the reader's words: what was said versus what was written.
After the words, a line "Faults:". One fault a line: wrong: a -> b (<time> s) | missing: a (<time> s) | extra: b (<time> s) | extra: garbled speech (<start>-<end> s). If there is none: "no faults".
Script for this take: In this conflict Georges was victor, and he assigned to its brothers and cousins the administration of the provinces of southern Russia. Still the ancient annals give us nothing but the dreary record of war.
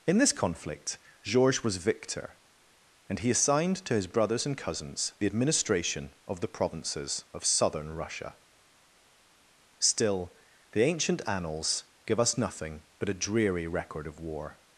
In this conflict Georges was victor, and he assigned to his brothers and cousins the administration of the provinces of southern Russia. Still the ancient annals give us nothing but a dreary record of war.
Faults:
wrong: its -> his (3.9 s)
wrong: the -> a (13.1 s)